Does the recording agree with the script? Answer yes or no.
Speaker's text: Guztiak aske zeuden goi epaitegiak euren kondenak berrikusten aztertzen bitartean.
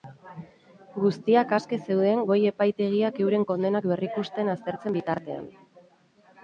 yes